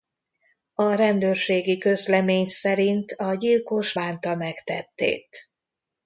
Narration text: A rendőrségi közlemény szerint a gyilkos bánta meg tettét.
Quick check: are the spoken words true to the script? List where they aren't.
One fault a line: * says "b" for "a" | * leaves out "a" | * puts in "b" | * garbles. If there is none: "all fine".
all fine